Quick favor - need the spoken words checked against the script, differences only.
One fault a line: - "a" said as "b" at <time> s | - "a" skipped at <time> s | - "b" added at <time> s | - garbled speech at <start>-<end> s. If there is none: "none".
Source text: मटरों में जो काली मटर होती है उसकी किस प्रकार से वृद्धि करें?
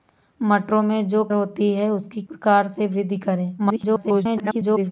- "काली मटर" skipped at 1.2 s
- "किस" skipped at 2.2 s
- garbled speech at 3.6-4.9 s